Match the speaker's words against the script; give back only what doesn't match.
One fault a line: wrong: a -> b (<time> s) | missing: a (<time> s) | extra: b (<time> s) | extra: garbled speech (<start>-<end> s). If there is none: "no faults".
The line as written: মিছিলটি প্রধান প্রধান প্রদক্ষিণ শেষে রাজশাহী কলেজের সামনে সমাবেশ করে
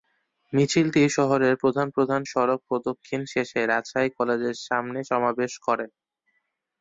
extra: শহরের (1.2 s)
extra: সড়ক (2.2 s)